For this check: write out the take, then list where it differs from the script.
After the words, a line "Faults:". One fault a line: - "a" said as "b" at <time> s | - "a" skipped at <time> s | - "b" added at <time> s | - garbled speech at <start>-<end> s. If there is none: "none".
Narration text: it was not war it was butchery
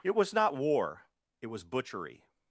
it was not war it was butchery
Faults:
none